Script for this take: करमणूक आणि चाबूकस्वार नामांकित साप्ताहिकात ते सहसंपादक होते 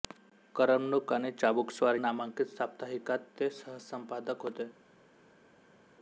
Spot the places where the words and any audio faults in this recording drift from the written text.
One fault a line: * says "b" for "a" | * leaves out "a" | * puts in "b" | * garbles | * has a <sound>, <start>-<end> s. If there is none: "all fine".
all fine